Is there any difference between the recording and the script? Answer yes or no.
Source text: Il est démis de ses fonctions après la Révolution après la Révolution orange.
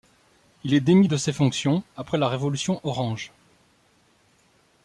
yes